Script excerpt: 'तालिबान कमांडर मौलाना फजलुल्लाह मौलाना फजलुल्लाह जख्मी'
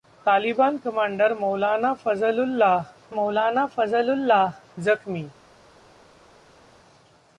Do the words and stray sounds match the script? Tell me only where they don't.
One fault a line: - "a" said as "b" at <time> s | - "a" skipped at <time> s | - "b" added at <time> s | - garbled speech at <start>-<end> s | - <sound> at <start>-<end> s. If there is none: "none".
none